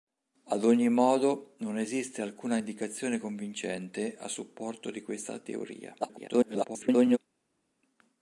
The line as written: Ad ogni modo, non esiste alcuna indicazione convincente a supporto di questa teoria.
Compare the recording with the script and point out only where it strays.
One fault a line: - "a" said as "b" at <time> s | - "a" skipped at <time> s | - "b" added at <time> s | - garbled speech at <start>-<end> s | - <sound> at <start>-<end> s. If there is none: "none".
- garbled speech at 6.0-7.2 s